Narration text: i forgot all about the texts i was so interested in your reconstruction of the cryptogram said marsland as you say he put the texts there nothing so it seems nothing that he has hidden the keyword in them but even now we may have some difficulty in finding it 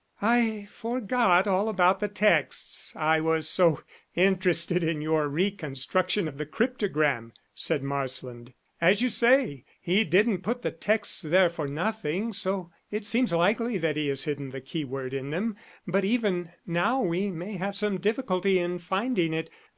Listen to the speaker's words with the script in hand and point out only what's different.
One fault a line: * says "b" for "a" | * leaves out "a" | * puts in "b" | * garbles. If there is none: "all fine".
* puts in "didn't"
* puts in "for"
* says "likely" for "nothing"